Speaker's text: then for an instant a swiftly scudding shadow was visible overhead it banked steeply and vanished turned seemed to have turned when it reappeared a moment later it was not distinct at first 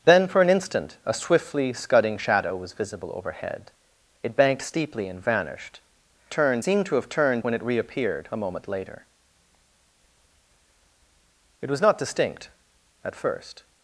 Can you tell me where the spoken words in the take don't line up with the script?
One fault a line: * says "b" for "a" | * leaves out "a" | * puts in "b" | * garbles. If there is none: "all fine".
all fine